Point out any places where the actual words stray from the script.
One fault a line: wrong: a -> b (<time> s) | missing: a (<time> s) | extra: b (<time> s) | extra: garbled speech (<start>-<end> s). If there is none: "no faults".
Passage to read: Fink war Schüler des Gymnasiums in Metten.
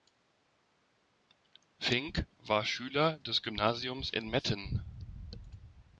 no faults